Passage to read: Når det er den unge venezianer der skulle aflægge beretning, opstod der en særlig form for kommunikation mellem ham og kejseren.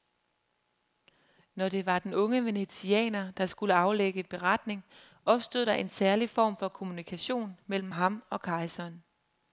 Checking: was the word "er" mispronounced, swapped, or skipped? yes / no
yes